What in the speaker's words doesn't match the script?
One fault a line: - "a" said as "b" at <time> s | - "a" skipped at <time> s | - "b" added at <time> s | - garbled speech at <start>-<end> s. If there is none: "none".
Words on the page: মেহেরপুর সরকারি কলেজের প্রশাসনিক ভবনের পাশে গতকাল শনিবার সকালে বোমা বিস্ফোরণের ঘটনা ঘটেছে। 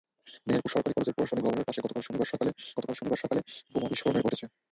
- "গতকাল শনিবার সকালে" added at 2.8 s
- "ঘটনা" skipped at 4.2 s